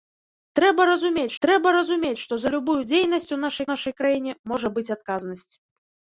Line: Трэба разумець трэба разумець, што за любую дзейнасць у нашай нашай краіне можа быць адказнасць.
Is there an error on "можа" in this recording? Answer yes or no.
no